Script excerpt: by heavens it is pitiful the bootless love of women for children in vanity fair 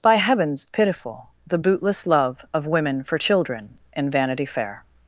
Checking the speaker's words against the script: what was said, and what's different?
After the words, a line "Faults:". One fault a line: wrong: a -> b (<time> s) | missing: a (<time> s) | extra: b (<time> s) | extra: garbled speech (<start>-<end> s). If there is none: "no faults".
by heavens pitiful the bootless love of women for children in vanity fair
Faults:
missing: it is (0.7 s)